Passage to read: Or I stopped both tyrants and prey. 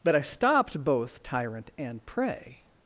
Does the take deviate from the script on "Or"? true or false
true